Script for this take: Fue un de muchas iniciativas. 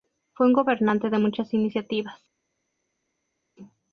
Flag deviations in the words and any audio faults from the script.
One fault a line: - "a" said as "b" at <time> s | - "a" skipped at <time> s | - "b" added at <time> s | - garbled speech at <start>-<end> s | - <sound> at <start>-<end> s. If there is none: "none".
- "gobernante" added at 0.5 s